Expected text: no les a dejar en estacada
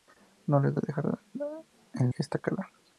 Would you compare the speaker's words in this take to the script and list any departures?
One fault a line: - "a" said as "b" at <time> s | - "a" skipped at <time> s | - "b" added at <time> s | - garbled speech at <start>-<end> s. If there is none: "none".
none